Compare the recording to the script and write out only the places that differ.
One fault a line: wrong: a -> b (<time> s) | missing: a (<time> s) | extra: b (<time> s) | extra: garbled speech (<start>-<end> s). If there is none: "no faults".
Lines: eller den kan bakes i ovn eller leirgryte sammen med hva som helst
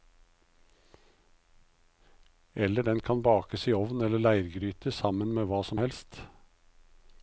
no faults